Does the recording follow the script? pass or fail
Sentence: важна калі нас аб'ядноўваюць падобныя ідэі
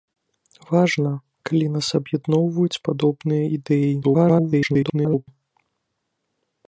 fail